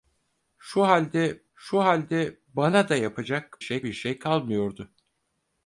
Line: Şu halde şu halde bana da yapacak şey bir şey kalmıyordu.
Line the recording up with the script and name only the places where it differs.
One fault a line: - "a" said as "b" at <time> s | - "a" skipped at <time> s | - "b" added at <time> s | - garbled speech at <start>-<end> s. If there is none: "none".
none